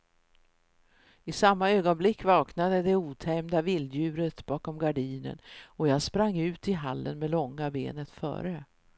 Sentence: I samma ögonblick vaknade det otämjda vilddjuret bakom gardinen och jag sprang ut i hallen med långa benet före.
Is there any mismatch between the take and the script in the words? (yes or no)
no